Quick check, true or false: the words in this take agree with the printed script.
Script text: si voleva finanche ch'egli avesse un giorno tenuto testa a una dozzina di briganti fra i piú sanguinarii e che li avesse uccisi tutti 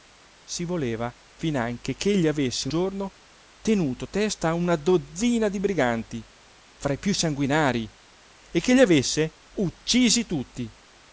false